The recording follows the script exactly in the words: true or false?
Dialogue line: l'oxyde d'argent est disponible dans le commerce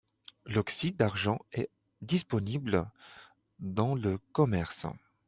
true